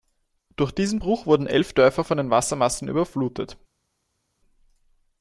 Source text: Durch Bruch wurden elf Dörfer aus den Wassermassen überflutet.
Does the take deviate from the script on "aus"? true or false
true